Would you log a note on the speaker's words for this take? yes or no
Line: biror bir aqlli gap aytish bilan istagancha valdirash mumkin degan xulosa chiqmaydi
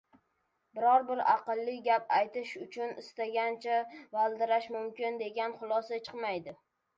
yes